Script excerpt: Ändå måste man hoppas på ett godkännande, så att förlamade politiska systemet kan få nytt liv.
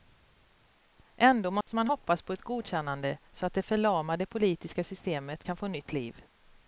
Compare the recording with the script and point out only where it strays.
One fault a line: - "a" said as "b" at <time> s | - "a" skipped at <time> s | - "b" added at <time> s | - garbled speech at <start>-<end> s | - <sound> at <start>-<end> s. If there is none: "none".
- dropout at 1.6-1.7 s
- "det" added at 3.5 s